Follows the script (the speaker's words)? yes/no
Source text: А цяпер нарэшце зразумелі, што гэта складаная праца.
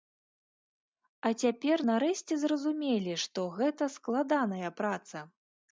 yes